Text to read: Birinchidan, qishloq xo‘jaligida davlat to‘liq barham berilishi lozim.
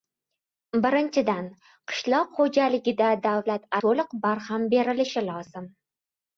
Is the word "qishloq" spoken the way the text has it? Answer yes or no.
yes